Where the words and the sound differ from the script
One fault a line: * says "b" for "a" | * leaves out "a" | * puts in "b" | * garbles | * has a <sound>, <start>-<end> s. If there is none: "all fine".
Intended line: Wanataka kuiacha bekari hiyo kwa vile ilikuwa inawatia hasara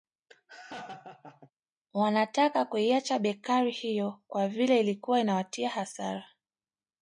* has a laugh, 0.3-1.5 s